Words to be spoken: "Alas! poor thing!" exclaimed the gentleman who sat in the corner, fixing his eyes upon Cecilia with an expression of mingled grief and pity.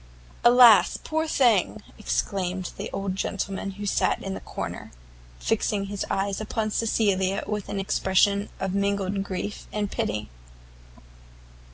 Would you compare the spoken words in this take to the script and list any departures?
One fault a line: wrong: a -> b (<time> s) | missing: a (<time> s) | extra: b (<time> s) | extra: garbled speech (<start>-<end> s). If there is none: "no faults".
extra: old (2.9 s)